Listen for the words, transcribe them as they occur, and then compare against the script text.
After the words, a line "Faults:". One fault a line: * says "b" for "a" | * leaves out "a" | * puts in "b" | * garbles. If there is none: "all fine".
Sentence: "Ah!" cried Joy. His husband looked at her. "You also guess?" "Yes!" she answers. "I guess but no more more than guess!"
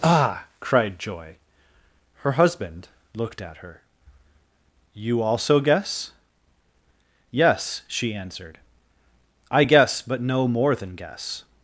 "Ah!" cried Joy. Her husband looked at her. "You also guess?" "Yes!" she answered. "I guess but no more than guess!"
Faults:
* says "Her" for "His"
* says "answered" for "answers"
* leaves out "more"